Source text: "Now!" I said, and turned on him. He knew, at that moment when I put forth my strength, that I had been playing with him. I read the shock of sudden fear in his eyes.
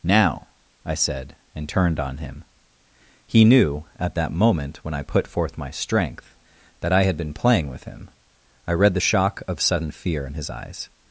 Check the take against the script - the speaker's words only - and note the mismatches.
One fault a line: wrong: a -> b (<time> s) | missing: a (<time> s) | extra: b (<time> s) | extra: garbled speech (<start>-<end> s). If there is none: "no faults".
no faults